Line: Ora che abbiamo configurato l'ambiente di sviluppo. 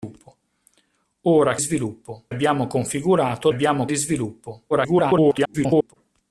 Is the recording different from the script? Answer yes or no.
yes